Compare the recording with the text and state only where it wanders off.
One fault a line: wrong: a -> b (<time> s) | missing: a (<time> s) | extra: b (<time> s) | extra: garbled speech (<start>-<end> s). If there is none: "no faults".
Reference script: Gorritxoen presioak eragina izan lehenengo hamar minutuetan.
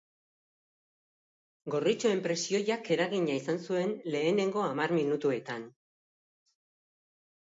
extra: zuen (3.7 s)